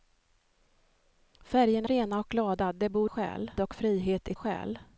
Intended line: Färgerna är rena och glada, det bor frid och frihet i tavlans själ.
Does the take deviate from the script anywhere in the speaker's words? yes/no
yes